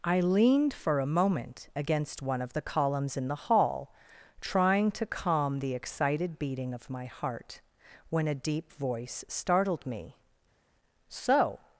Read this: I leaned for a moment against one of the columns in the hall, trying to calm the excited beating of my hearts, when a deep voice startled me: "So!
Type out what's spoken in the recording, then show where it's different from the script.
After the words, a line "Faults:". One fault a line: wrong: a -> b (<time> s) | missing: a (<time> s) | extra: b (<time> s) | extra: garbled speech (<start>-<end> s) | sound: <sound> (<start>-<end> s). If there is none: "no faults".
I leaned for a moment against one of the columns in the hall, trying to calm the excited beating of my heart, when a deep voice startled me: "So!
Faults:
wrong: hearts -> heart (7.0 s)